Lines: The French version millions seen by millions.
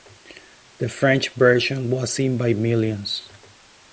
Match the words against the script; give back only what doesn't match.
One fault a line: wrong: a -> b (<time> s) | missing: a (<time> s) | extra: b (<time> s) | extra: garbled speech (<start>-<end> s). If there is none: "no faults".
wrong: millions -> was (1.9 s)